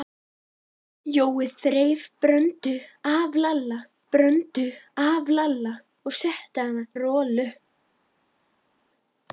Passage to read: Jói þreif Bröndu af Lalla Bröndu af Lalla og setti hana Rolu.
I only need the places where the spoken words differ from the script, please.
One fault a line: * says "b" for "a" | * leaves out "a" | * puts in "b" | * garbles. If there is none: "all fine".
all fine